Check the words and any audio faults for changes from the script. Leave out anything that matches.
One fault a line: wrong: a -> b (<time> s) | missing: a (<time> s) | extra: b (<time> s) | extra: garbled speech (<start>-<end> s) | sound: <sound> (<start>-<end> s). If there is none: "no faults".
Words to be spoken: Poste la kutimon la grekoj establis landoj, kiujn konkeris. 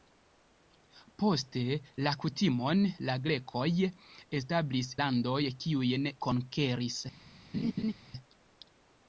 sound: laugh (7.5-7.9 s)